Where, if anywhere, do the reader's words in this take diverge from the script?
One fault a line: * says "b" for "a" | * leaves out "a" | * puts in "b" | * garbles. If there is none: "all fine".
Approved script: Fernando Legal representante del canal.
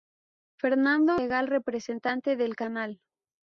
all fine